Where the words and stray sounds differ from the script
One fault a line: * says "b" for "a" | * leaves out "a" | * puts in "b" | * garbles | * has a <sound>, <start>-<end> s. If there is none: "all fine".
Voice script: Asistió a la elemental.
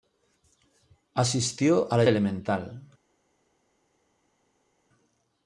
all fine